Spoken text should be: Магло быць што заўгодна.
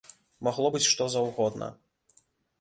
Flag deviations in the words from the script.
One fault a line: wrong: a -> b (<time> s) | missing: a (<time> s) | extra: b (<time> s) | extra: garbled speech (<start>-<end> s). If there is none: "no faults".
no faults